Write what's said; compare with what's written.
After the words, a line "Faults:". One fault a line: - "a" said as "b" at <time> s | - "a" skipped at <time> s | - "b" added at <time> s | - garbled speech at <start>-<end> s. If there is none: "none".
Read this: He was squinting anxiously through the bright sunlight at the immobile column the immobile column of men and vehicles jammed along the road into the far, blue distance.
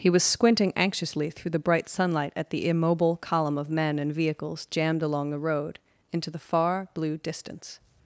He was squinting anxiously through the bright sunlight at the immobile column of men and vehicles jammed along the road into the far, blue distance.
Faults:
- "the immobile column" skipped at 3.5 s